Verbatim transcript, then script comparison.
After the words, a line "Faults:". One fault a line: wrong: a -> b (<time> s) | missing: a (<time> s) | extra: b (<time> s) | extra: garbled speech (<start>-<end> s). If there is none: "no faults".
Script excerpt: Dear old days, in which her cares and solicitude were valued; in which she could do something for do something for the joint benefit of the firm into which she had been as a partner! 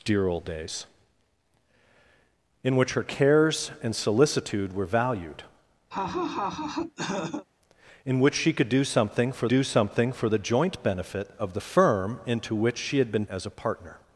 Dear old days, in which her cares and solicitude were valued; in which she could do something for do something for the joint benefit of the firm into which she had been as a partner!
Faults:
no faults